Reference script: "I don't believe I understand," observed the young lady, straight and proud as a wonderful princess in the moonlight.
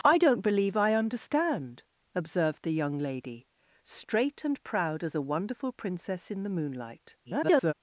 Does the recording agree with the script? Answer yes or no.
no